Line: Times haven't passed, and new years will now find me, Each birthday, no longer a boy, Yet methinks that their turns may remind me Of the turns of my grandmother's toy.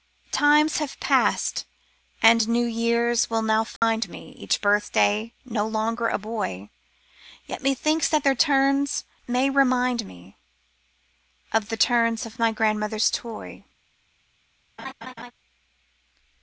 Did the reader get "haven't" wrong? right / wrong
wrong